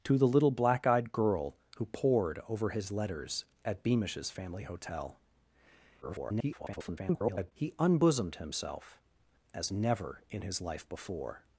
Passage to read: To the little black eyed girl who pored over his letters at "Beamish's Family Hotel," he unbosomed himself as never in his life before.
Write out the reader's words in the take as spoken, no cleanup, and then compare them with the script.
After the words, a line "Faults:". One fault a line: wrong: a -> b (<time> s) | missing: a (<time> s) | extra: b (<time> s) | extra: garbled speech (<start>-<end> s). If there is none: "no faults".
To the little black eyed girl who pored over his letters at "Beamish's Family Hotel," [garbled] he unbosomed himself as never in his life before.
Faults:
extra: garbled speech (6.0-7.5 s)